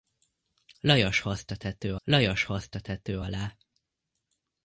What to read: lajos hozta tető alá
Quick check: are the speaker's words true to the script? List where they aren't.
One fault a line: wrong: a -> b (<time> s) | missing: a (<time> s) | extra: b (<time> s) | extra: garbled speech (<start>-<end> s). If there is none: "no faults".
extra: lajos hozta tető (2.0 s)